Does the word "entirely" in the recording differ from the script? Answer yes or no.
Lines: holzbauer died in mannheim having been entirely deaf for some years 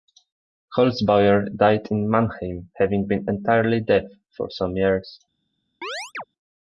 no